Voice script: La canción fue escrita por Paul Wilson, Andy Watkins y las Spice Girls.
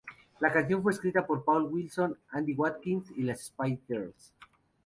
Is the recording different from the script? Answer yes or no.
no